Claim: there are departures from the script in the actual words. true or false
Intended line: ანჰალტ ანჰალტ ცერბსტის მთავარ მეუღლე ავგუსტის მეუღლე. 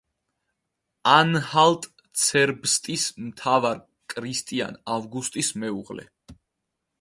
true